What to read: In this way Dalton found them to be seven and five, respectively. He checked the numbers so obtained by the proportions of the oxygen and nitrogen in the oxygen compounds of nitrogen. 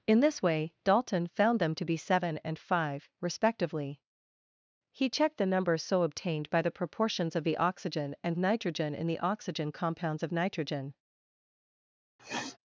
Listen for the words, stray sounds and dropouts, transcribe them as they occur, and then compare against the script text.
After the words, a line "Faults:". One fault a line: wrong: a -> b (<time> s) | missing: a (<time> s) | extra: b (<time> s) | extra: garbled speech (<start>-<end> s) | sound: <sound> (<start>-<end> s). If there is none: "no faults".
In this way Dalton found them to be seven and five, respectively. He checked the numbers so obtained by the proportions of the oxygen and nitrogen in the oxygen compounds of nitrogen.
Faults:
sound: sniff (12.2-12.6 s)